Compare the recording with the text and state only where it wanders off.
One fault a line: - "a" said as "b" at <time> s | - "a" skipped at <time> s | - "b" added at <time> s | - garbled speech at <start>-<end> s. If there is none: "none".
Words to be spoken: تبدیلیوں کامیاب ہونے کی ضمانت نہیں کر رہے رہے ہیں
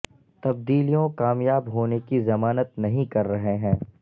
- "رہے" skipped at 3.6 s